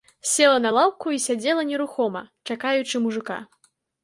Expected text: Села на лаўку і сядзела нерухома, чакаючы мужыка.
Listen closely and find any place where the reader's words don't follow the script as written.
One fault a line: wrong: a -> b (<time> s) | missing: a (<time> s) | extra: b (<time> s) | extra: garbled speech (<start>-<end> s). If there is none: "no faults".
no faults